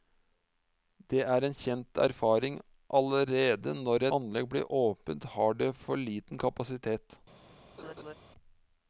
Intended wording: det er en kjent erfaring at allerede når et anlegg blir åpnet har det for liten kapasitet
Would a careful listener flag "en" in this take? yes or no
no